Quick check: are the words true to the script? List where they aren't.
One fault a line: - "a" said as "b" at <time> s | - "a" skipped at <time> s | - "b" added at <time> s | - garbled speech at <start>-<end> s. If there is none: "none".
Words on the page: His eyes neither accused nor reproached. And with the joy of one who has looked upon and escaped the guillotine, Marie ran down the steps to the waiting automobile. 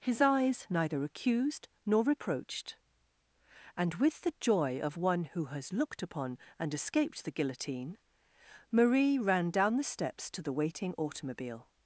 none